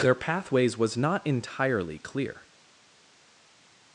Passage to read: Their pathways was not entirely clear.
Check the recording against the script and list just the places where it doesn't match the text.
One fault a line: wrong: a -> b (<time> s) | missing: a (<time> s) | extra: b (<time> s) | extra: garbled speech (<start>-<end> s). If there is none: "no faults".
no faults